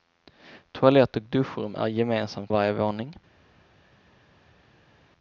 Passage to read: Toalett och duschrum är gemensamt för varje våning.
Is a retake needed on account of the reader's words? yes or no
yes